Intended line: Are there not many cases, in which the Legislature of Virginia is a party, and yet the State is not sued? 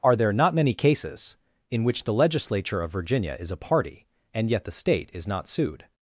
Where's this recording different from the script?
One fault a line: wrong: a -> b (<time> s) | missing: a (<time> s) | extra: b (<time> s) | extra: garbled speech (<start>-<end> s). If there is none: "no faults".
no faults